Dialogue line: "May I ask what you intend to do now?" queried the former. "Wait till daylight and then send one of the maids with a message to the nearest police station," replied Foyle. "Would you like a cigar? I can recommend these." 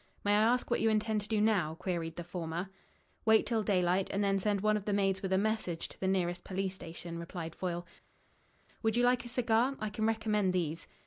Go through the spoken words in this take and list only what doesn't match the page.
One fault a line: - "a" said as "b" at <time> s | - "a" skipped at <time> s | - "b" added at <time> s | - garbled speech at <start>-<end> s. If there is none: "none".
none